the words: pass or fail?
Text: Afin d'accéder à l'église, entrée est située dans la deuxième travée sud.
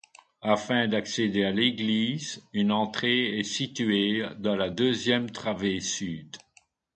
fail